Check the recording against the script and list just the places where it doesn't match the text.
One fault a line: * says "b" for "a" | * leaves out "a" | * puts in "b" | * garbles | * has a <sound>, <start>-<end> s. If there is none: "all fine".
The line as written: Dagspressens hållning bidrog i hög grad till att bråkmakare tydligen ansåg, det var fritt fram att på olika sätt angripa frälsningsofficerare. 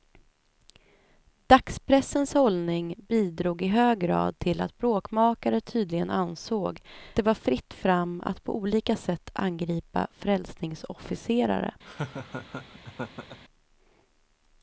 * has a laugh, 11.8-13.4 s